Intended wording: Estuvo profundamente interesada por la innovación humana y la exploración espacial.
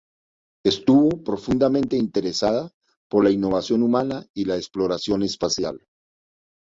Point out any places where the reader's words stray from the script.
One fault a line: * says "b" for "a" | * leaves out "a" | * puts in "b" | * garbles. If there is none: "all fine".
all fine